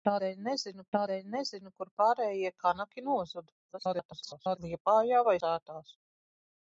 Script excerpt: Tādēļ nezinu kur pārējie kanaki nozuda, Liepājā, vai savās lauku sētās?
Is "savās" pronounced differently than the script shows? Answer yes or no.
yes